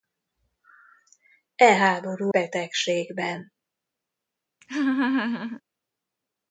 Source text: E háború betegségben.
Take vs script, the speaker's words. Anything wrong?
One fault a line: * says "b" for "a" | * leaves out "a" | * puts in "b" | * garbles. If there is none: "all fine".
all fine